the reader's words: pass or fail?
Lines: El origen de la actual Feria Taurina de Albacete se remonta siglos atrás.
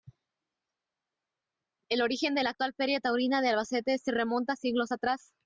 pass